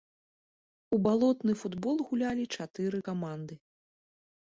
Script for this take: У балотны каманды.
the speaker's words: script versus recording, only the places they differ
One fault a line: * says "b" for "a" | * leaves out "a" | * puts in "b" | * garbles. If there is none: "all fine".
* puts in "футбол гулялі чатыры"